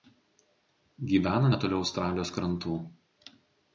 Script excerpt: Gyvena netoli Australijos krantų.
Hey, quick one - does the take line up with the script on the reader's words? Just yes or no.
yes